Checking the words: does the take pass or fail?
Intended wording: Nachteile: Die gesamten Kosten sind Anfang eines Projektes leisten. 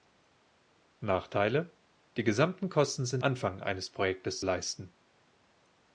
pass